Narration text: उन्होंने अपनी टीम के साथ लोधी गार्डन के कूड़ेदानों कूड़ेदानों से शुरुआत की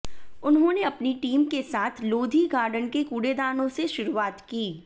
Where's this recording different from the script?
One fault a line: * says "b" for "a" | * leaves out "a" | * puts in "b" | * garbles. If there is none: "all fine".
* leaves out "कूड़ेदानों"